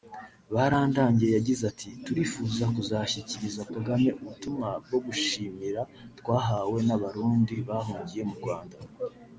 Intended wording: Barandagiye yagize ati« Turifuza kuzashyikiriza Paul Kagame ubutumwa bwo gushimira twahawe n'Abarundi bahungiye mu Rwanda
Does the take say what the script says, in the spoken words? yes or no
no